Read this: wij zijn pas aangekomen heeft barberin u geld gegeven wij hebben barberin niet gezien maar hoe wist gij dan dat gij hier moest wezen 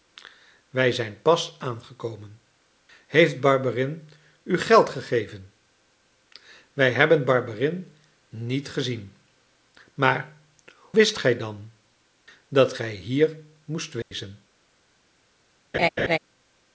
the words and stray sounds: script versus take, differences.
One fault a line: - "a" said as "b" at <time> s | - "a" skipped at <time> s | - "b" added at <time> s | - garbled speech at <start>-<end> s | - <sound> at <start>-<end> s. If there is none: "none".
- "hoe" skipped at 10.4 s
- dropout at 14.0-14.1 s
- laugh at 15.7-16.2 s